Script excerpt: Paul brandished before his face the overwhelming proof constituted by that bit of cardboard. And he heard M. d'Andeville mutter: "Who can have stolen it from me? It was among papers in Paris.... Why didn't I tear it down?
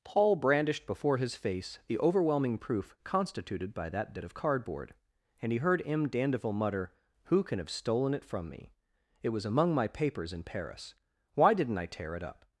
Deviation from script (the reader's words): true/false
true